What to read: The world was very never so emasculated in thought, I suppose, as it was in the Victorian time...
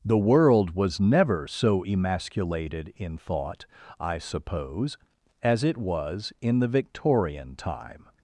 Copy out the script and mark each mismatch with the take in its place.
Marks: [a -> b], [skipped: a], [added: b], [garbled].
The world was [skipped: very] never so emasculated in thought, I suppose, as it was in the Victorian time...